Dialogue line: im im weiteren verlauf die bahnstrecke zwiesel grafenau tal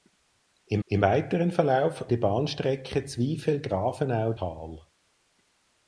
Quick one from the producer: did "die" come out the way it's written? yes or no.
yes